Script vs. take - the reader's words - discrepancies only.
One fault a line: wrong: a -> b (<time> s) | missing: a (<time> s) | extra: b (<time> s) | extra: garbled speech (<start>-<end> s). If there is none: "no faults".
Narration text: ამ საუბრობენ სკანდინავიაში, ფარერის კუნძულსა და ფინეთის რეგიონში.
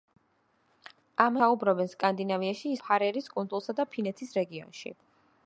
no faults